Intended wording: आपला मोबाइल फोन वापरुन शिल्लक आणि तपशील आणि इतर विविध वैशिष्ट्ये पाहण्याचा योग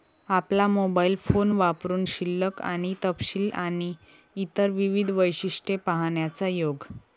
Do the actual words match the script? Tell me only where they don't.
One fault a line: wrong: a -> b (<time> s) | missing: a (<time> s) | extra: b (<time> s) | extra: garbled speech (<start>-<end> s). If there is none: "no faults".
no faults